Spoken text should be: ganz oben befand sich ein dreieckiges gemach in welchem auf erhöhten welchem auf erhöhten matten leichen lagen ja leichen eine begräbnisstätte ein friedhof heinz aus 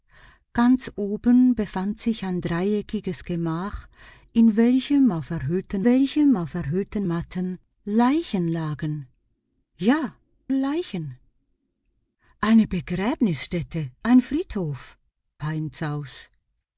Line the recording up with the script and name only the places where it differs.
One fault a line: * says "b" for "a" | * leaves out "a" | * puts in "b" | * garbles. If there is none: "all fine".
all fine